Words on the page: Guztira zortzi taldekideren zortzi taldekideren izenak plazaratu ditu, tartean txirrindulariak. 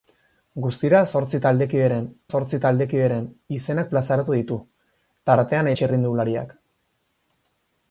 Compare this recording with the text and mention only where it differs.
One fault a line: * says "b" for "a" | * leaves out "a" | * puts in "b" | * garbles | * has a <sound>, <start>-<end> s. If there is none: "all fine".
all fine